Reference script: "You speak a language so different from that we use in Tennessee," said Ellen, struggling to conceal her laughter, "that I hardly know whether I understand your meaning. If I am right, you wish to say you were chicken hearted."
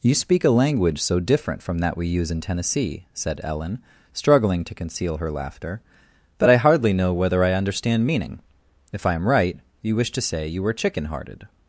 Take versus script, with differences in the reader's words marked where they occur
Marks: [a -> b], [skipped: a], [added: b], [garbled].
"You speak a language so different from that we use in Tennessee," said Ellen, struggling to conceal her laughter, "that I hardly know whether I understand [skipped: your] meaning. If I am right, you wish to say you were chicken hearted."